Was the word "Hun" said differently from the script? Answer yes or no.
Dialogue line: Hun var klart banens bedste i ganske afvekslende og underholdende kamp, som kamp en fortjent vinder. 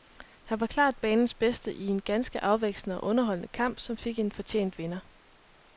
yes